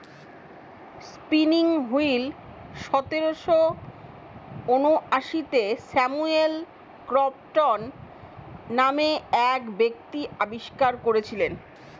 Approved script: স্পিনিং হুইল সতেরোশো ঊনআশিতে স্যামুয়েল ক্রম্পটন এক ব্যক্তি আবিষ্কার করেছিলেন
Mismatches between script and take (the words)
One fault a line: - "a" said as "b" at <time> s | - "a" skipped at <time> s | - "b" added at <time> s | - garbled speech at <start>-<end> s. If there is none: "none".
- "নামে" added at 8.8 s